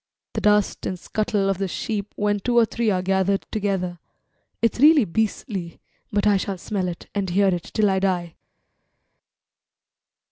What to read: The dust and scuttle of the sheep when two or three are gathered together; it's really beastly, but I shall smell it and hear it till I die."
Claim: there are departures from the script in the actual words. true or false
false